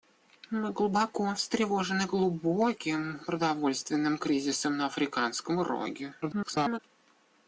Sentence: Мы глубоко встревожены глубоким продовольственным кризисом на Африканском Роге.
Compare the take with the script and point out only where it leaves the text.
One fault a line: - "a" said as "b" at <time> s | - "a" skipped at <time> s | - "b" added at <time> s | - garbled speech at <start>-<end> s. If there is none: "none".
- garbled speech at 6.2-6.8 s